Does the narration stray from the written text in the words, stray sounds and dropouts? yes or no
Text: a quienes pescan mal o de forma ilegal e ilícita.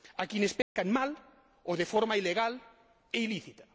yes